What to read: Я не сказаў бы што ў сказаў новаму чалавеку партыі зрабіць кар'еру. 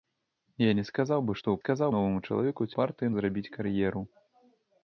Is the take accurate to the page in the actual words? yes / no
yes